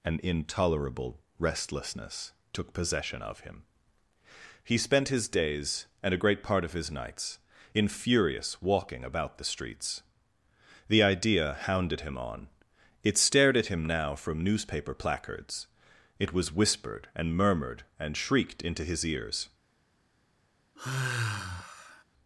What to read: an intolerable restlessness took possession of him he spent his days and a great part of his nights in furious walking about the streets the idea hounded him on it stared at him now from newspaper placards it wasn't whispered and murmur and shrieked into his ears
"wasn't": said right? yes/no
no